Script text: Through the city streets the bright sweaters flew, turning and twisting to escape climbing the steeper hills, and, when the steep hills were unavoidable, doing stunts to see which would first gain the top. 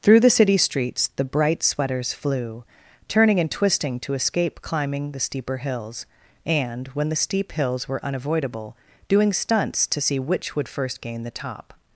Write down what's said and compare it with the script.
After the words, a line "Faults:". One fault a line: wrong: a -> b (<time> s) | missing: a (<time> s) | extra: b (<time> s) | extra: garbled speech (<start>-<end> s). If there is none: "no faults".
Through the city streets the bright sweaters flew, turning and twisting to escape climbing the steeper hills, and, when the steep hills were unavoidable, doing stunts to see which would first gain the top.
Faults:
no faults